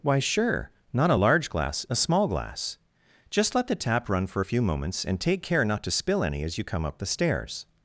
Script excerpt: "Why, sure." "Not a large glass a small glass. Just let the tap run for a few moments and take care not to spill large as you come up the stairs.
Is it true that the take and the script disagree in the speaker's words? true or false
true